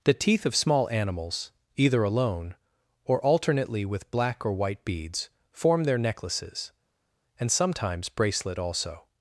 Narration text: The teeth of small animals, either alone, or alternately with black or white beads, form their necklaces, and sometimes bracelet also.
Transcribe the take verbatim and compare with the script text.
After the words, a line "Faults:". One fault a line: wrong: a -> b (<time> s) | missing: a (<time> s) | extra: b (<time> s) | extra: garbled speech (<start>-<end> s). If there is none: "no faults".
The teeth of small animals, either alone, or alternately with black or white beads, form their necklaces, and sometimes bracelet also.
Faults:
no faults